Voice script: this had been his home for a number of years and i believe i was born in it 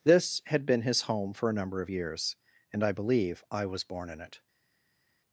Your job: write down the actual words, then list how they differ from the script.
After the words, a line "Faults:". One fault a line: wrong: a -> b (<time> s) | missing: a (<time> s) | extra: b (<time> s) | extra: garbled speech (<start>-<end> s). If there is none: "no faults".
this had been his home for a number of years and i believe i was born in it
Faults:
no faults